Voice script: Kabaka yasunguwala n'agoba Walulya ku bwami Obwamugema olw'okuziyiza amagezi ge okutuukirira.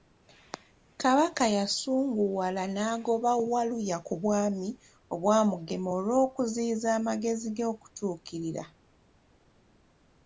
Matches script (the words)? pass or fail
pass